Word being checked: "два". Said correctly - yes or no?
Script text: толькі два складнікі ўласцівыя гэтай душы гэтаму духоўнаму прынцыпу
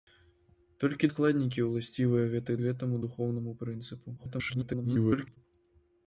no